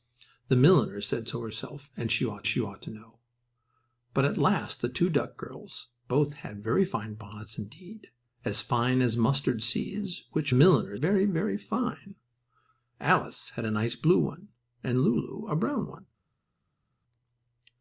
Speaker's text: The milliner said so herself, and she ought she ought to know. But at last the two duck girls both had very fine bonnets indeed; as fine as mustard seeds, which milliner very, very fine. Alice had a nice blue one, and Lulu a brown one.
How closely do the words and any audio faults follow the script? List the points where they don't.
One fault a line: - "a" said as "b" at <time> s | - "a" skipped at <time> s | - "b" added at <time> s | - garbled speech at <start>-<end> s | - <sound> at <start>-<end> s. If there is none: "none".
none